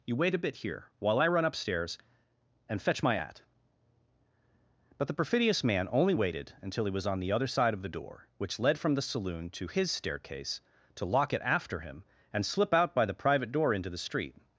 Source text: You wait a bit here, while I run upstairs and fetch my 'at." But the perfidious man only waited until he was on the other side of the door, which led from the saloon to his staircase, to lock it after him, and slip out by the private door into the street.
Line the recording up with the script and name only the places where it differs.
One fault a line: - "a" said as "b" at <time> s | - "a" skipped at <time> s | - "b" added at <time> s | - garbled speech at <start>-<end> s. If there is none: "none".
none